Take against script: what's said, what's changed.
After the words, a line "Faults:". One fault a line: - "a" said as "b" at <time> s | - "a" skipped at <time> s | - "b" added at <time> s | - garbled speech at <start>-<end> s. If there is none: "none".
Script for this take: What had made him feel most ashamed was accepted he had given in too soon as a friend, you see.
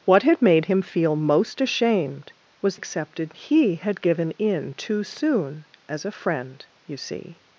What had made him feel most ashamed was accepted he had given in too soon as a friend, you see.
Faults:
none